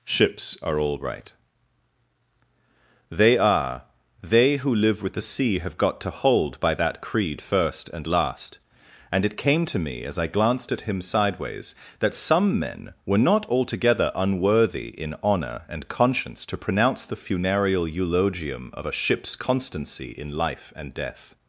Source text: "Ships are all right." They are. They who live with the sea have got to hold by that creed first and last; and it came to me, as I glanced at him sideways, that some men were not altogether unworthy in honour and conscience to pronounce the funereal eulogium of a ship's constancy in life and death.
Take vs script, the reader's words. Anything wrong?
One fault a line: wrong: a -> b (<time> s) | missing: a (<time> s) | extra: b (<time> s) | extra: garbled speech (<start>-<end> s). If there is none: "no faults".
no faults